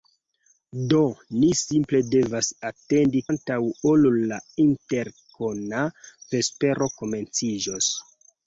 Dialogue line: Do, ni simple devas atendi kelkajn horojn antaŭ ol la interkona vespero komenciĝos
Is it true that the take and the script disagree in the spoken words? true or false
true